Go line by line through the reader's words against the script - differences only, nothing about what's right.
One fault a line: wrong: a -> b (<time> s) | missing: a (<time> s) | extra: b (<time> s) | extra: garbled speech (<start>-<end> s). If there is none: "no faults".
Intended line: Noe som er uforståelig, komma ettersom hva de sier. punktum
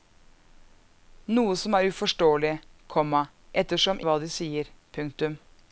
no faults